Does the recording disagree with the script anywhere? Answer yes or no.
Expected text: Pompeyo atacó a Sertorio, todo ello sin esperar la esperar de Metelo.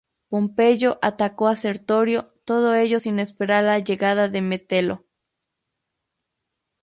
yes